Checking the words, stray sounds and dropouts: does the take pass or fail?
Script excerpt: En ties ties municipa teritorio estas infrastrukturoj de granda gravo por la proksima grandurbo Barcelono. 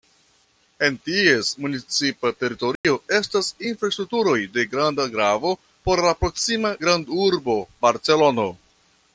fail